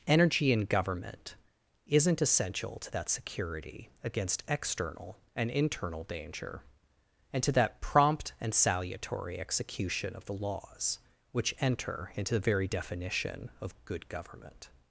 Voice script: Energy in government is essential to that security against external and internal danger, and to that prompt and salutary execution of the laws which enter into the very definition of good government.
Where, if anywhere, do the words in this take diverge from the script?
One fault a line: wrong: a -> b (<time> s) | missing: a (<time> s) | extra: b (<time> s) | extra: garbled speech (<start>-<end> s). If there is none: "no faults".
wrong: is -> isn't (1.9 s)